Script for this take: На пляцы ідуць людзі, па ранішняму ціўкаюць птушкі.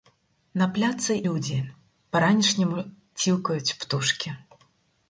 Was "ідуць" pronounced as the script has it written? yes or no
no